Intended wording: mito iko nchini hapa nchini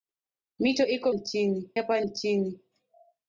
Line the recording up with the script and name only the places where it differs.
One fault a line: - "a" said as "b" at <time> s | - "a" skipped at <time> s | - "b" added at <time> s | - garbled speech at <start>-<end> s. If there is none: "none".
none